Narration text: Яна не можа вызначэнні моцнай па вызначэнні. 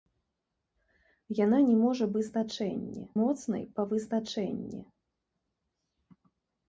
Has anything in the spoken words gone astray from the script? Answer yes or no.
no